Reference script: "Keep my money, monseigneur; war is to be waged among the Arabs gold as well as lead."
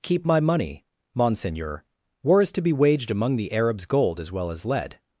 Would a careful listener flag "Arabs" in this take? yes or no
no